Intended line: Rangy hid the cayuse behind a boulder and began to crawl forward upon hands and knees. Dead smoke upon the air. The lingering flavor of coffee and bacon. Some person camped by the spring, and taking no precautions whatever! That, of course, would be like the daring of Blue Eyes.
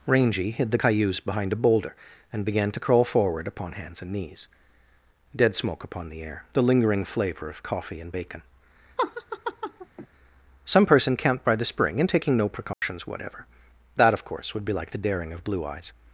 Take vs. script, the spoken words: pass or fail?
pass